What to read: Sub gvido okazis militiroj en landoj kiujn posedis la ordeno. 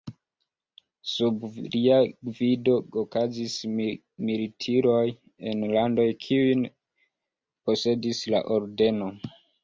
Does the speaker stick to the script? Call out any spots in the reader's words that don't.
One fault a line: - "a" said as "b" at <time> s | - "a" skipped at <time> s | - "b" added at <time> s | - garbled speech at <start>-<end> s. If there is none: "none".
- "lia" added at 1.7 s